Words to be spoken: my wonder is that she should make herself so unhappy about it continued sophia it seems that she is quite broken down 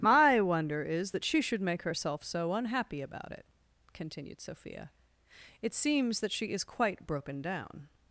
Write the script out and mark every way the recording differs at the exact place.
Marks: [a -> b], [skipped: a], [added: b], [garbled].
my wonder is that she should make herself so unhappy about it continued sophia it seems that she is quite broken down